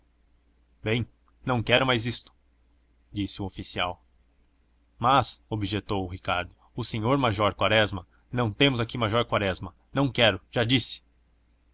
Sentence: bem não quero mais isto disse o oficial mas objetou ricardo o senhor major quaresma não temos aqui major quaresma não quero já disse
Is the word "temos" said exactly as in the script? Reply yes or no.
yes